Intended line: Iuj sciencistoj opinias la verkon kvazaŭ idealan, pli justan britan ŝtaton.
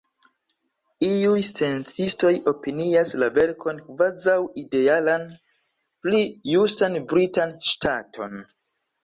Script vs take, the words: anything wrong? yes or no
no